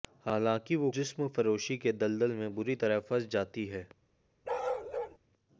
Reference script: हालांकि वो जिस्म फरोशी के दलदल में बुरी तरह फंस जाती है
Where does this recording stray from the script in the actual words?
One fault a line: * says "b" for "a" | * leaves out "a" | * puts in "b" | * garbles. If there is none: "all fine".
all fine